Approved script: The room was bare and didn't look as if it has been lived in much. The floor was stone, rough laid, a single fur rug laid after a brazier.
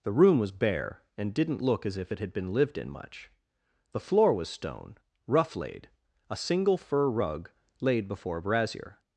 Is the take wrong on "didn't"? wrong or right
right